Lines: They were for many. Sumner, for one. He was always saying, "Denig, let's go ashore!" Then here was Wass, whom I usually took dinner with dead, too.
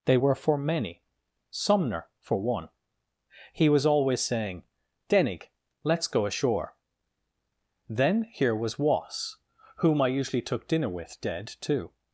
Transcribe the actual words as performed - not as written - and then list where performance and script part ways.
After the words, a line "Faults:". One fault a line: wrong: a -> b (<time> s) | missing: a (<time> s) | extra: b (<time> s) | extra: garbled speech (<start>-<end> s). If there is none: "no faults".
They were for many. Sumner, for one. He was always saying, "Denig, let's go ashore!" Then here was Wass, whom I usually took dinner with dead, too.
Faults:
no faults